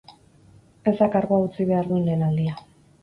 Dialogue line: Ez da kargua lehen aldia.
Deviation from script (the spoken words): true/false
true